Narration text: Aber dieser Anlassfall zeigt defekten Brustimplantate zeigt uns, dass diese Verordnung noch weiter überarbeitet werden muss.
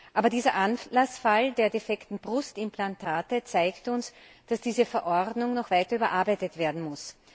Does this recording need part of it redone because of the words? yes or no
yes